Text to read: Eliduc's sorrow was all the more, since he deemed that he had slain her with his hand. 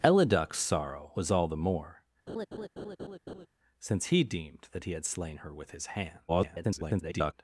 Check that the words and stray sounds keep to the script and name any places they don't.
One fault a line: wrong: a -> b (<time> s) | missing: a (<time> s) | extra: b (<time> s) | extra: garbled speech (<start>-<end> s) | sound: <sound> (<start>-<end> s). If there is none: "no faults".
sound: laugh (2.3-3.5 s)
extra: garbled speech (6.3-7.3 s)